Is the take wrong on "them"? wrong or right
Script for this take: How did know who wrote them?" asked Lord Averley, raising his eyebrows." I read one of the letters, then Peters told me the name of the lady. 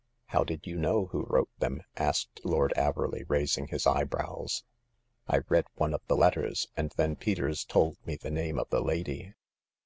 right